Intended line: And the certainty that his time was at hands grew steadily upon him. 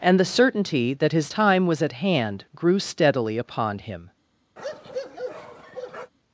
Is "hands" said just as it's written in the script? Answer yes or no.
no